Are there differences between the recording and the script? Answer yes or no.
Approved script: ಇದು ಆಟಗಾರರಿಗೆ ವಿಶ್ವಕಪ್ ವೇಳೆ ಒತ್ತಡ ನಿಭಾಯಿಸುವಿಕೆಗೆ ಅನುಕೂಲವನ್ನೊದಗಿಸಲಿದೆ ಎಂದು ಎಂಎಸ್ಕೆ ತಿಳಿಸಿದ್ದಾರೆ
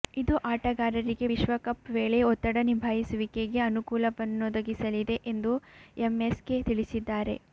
no